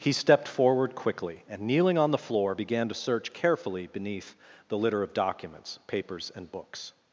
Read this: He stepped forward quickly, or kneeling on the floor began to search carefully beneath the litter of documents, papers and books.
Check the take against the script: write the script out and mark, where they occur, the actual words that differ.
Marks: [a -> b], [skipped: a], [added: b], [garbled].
He stepped forward quickly, [or -> and] kneeling on the floor began to search carefully beneath the litter of documents, papers and books.